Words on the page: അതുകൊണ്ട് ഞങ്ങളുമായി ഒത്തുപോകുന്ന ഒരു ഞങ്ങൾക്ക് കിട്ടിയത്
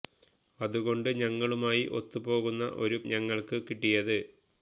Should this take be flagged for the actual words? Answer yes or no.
no